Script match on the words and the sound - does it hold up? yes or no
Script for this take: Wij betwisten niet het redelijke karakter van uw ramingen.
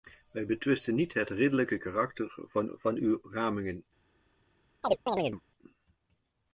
no